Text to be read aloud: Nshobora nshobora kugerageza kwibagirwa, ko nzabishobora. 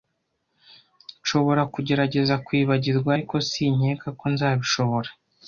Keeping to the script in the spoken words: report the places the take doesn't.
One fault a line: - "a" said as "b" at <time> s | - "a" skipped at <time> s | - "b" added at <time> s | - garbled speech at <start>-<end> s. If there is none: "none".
- "nshobora" skipped at 1.6 s
- "ariko sinkeka" added at 3.1 s